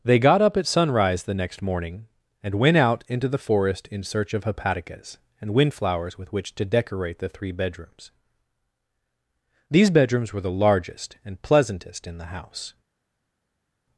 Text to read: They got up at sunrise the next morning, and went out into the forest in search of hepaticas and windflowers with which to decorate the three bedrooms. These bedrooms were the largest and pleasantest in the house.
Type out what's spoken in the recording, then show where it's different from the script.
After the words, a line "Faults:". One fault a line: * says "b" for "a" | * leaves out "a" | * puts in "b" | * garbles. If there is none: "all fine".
They got up at sunrise the next morning, and went out into the forest in search of hepaticas and windflowers with which to decorate the three bedrooms. These bedrooms were the largest and pleasantest in the house.
Faults:
all fine